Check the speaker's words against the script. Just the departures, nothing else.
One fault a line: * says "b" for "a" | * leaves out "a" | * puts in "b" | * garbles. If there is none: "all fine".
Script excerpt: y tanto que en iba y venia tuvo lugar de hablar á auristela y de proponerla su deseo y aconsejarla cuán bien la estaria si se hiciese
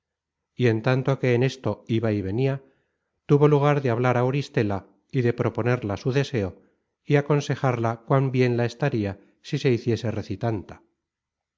* puts in "en"
* puts in "esto"